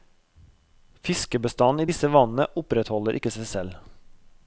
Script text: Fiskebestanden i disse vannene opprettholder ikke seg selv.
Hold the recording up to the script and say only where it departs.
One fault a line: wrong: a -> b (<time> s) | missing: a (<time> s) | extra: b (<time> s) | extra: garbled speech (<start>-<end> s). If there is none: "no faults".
no faults